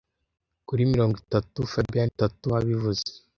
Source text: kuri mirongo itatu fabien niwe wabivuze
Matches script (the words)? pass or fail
fail